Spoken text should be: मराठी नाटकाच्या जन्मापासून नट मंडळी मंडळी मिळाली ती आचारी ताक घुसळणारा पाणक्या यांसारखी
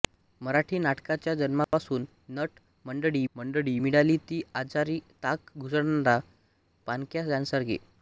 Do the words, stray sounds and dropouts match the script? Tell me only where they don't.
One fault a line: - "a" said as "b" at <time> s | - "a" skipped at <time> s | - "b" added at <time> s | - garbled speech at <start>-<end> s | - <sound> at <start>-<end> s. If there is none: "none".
- dropout at 1.6-1.7 s